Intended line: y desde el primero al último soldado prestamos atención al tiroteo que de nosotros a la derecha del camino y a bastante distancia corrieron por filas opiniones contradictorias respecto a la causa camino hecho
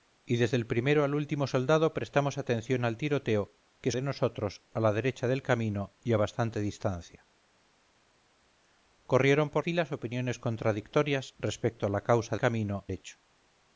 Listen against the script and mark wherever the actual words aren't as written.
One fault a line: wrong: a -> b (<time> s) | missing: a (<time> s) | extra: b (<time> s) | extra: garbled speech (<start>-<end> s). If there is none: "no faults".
no faults